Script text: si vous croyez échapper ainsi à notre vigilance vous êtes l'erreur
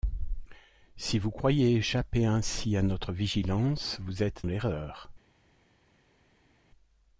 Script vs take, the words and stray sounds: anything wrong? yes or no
no